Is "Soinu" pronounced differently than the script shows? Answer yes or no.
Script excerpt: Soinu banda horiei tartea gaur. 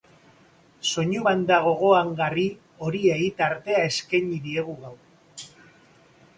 no